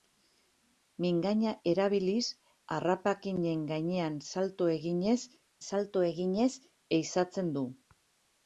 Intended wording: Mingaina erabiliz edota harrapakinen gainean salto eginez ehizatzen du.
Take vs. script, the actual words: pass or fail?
fail